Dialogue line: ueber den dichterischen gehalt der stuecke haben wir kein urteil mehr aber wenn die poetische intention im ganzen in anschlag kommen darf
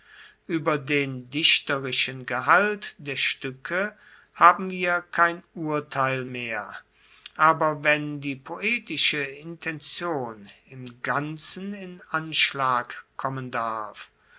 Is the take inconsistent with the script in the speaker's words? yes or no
no